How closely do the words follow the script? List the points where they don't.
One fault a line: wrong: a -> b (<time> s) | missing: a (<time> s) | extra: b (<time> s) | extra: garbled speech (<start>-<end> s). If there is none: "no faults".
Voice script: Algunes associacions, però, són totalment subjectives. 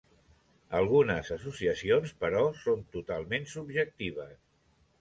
no faults